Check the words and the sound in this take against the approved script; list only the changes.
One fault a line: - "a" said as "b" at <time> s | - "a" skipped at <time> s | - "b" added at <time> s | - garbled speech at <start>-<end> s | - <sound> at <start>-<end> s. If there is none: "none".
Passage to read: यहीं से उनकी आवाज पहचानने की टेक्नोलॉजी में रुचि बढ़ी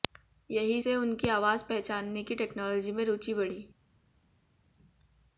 none